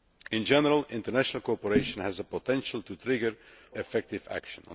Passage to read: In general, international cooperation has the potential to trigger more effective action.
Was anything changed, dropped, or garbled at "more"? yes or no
yes